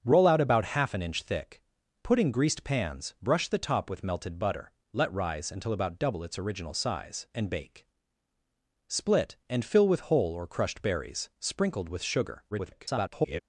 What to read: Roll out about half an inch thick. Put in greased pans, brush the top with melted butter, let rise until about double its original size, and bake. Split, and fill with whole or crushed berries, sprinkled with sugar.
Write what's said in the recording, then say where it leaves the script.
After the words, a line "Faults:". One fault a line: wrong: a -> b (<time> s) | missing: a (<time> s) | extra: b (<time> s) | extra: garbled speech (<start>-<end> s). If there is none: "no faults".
Roll out about half an inch thick. Put in greased pans, brush the top with melted butter, let rise until about double its original size, and bake. Split, and fill with whole or crushed berries, sprinkled with sugar. [garbled]
Faults:
extra: garbled speech (12.5-13.4 s)